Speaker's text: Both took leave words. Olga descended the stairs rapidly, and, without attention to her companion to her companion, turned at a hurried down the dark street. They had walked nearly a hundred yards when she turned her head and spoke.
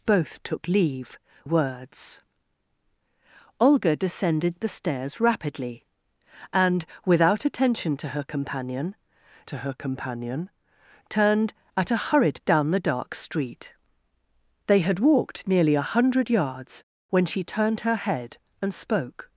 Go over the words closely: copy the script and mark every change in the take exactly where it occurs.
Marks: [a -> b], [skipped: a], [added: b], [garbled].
Both took leave words. Olga descended the stairs rapidly, and, without attention to her companion to her companion, turned at a hurried down the dark street. They had walked nearly a hundred yards when she turned her head and spoke.